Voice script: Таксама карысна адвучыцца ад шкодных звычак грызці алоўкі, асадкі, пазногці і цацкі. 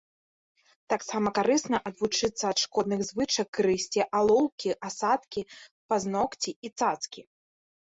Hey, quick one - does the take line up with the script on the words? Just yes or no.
yes